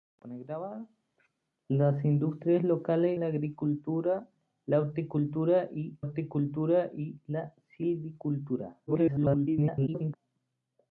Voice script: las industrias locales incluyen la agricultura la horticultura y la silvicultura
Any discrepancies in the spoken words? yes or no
yes